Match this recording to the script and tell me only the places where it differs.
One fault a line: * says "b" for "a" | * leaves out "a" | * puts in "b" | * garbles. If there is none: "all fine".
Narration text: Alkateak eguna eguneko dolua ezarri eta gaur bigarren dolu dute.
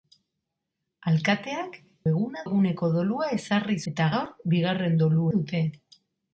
all fine